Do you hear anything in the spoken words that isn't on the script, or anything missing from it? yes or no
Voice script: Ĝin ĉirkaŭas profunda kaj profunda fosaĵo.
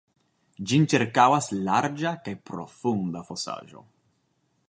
yes